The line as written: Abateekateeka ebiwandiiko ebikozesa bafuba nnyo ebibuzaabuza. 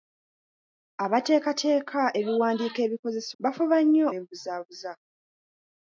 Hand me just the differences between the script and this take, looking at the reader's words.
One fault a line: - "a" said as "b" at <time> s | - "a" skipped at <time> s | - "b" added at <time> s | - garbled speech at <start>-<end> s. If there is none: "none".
none